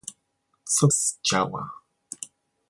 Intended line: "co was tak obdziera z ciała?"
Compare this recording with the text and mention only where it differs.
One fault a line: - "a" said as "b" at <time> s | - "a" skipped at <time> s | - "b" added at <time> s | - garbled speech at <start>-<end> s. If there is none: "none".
- "was tak obdziera" skipped at 0.9 s